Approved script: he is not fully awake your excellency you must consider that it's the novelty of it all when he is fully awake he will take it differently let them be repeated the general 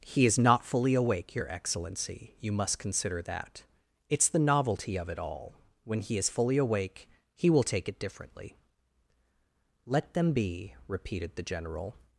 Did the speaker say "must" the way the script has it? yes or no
yes